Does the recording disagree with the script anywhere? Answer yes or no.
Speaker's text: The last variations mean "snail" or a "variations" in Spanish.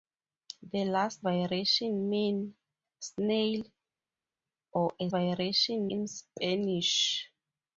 no